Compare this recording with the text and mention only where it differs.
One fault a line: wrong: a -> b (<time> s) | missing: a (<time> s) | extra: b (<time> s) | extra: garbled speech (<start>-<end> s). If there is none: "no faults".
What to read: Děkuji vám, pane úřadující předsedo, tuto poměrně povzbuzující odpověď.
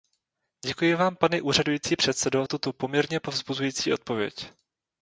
no faults